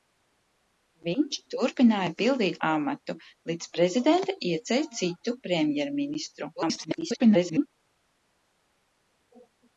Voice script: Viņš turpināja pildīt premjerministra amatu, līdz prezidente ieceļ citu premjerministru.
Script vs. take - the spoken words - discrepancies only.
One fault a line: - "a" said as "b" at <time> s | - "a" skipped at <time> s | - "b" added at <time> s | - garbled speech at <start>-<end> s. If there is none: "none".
- "premjerministra" skipped at 2.5 s
- garbled speech at 6.6-7.7 s